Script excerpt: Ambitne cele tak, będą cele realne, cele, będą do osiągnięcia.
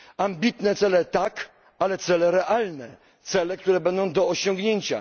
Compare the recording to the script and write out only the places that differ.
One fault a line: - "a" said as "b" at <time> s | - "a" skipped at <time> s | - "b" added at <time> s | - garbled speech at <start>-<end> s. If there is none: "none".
- "będą" said as "ale" at 1.8 s
- "które" added at 3.6 s